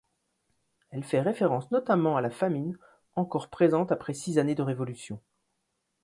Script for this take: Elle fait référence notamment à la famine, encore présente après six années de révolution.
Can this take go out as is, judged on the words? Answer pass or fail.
pass